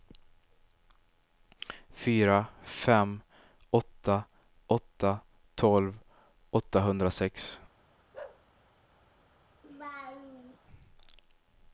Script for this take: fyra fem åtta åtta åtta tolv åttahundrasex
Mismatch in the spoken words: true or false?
true